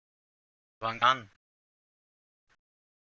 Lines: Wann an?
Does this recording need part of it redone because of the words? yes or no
no